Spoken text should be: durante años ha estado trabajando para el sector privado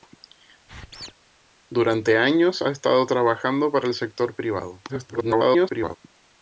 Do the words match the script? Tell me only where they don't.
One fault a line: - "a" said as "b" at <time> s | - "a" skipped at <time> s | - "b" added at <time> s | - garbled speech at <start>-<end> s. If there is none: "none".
- garbled speech at 4.9-6.0 s